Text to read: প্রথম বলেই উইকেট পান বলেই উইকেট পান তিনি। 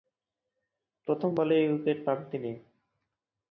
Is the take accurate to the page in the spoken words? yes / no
no